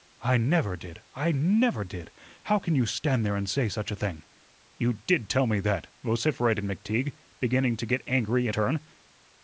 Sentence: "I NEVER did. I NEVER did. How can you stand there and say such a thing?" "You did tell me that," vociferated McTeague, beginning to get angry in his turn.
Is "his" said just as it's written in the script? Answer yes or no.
no